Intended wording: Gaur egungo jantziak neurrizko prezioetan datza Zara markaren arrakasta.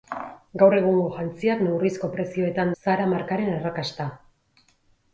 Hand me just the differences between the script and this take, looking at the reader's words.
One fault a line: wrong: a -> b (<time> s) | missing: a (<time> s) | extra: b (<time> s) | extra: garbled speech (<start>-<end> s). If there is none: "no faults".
missing: datza (2.7 s)